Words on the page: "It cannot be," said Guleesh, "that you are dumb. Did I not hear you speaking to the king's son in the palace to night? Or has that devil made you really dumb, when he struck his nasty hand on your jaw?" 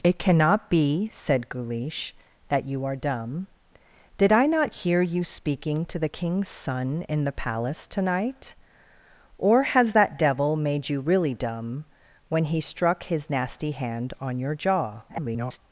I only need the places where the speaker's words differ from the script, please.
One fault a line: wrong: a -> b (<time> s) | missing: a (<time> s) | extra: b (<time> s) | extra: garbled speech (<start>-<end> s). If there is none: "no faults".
extra: garbled speech (15.1-15.6 s)